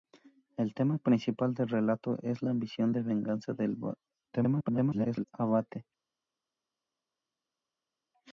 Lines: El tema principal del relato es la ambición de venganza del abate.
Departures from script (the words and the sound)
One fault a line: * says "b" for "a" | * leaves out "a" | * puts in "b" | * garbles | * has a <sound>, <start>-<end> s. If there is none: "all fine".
* garbles